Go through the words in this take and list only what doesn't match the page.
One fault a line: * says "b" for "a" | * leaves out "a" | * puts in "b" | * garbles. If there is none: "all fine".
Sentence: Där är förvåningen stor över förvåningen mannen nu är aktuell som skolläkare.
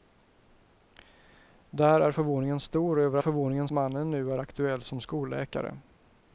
all fine